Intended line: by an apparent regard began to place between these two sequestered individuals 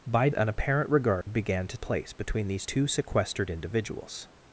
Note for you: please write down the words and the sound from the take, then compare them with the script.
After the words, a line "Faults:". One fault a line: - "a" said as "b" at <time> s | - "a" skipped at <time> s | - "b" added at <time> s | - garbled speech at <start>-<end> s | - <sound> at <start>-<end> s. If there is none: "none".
by an apparent regard began to place between these two sequestered individuals
Faults:
- dropout at 1.2-1.3 s